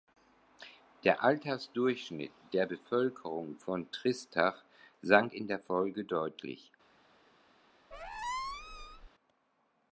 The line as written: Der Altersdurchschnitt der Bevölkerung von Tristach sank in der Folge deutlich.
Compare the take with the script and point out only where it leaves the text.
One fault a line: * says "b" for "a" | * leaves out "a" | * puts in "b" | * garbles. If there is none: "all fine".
all fine